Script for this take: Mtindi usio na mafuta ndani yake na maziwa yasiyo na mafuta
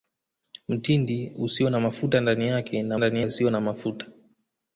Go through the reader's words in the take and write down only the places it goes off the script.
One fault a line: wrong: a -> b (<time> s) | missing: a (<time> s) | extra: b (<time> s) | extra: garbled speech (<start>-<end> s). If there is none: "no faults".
wrong: maziwa -> ndani (2.9 s)